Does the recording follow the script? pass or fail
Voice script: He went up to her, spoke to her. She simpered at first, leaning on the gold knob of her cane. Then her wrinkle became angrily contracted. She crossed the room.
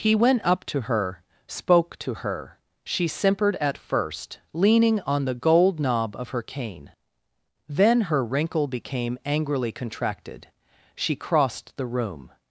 pass